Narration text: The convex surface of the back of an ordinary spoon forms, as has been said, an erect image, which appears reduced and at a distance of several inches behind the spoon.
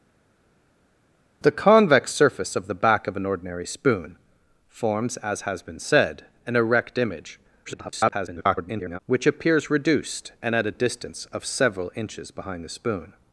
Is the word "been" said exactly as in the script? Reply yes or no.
yes